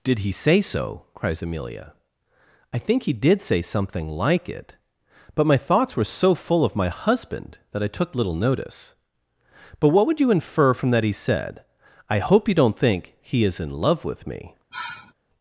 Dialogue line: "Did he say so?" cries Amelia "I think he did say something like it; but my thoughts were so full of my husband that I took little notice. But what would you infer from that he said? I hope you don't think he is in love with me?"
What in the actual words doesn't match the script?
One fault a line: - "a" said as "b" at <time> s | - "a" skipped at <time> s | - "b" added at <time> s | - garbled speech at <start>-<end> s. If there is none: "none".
none